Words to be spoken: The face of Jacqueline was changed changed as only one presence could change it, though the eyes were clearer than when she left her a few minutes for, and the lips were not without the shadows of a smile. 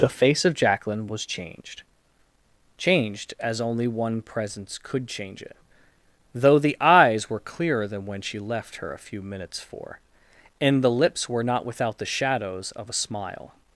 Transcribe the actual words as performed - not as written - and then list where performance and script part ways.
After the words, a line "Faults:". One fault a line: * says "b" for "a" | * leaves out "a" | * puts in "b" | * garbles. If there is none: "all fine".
The face of Jacqueline was changed changed as only one presence could change it, though the eyes were clearer than when she left her a few minutes for, and the lips were not without the shadows of a smile.
Faults:
all fine